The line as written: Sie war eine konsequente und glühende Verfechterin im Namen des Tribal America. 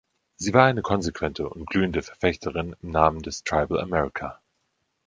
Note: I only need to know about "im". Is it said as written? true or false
true